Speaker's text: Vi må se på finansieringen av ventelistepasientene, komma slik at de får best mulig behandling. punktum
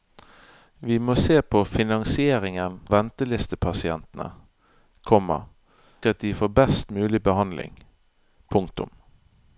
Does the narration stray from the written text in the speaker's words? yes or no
yes